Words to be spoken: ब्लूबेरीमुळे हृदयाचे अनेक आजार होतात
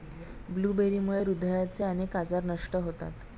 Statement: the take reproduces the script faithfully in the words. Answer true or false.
false